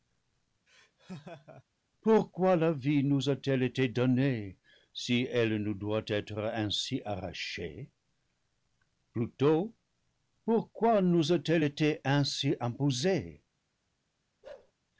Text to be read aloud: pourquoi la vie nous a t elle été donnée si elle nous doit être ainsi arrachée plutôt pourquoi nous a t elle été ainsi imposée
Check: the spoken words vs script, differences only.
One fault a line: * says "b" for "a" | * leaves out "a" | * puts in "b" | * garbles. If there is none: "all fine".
all fine